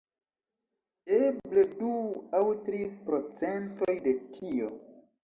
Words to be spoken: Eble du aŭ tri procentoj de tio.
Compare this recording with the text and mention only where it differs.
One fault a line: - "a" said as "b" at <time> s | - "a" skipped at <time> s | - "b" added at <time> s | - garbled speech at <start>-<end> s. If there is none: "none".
none